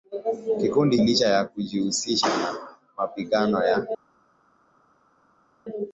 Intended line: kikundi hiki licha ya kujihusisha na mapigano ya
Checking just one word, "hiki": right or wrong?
wrong